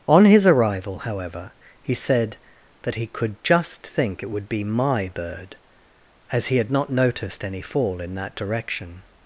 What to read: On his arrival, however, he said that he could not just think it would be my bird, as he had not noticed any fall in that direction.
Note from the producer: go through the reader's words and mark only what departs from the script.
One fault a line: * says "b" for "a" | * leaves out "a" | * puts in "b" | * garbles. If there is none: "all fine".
* leaves out "not"